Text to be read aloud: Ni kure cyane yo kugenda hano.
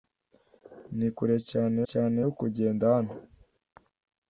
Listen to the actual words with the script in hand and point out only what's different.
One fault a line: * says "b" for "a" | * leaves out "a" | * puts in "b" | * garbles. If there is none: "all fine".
* puts in "cyane"